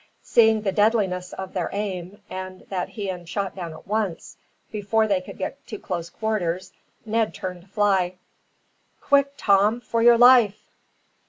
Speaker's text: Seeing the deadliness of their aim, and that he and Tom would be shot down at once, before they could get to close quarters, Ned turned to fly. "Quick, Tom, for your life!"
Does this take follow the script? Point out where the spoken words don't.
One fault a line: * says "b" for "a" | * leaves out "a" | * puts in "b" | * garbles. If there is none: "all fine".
* leaves out "Tom would be"